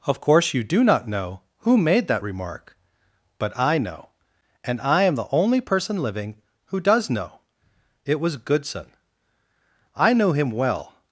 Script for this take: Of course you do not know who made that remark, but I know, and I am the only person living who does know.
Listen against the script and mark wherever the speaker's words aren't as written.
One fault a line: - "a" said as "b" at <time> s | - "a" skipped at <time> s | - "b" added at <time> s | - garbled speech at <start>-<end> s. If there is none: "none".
- "It was GOODSON I knew him well" added at 8.1 s